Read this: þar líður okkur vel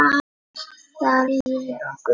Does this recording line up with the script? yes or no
yes